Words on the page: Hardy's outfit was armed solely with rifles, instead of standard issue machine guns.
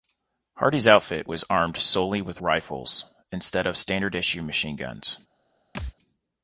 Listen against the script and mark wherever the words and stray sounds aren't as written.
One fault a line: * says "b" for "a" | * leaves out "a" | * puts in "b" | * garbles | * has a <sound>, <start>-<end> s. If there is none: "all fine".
* has a thud, 5.7-5.9 s